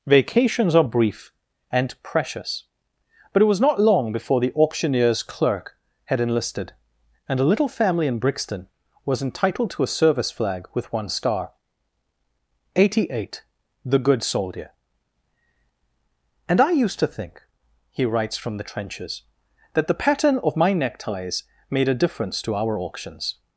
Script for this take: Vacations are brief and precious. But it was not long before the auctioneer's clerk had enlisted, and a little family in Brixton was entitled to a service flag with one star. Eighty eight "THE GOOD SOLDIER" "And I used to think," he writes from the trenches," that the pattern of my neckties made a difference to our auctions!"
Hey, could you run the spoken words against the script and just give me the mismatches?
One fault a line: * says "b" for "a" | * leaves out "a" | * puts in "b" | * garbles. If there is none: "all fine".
all fine